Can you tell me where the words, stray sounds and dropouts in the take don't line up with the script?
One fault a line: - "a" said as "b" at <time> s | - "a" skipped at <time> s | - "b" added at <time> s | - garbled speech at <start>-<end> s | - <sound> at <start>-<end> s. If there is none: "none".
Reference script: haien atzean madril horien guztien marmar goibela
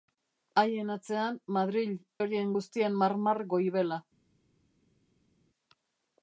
none